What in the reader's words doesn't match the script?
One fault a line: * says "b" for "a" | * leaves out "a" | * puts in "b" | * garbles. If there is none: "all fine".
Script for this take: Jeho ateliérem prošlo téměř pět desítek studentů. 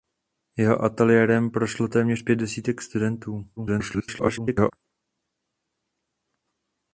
* garbles